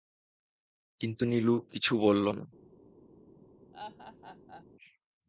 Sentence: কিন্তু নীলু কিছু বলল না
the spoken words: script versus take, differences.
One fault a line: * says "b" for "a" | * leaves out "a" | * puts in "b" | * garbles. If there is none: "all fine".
all fine